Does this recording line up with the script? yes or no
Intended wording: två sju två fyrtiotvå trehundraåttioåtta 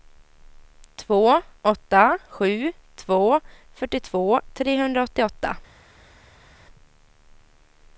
no